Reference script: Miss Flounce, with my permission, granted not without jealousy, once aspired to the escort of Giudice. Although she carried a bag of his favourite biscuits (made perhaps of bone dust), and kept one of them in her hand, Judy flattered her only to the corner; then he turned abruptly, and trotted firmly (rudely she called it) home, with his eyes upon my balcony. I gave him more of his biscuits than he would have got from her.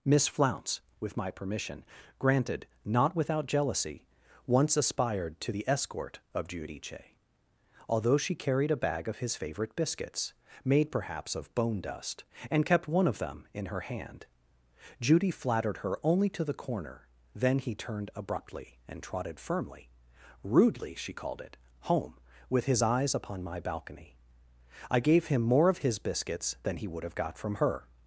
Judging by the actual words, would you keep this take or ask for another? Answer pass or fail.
pass